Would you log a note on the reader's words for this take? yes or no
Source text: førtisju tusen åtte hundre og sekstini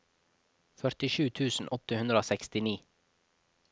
no